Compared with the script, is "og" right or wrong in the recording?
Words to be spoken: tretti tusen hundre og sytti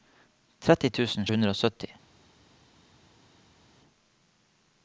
right